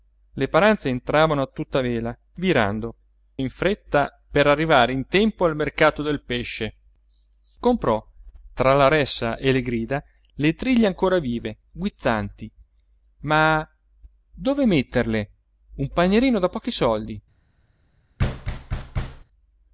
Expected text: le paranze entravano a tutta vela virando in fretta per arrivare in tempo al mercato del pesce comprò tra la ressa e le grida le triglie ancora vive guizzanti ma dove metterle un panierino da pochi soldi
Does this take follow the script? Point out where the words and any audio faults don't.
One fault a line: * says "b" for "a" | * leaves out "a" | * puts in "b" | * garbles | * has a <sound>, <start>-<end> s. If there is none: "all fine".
* has a thud, 18.2-19.2 s